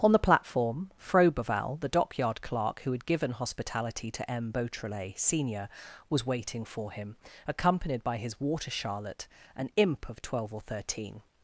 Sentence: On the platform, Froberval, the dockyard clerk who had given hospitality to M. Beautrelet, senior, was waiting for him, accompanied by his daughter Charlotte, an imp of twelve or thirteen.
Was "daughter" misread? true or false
true